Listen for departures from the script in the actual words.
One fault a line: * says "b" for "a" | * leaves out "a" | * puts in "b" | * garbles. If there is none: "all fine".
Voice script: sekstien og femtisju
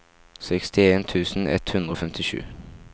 * puts in "tusen ett hundre"